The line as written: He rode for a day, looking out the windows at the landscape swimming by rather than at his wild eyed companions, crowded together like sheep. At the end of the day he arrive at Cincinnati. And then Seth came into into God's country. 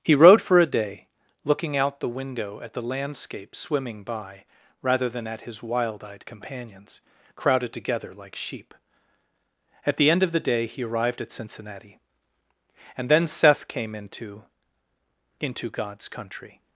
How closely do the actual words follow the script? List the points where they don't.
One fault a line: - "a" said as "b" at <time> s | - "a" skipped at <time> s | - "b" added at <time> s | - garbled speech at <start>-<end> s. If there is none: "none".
- "windows" said as "window" at 2.1 s
- "arrive" said as "arrived" at 10.8 s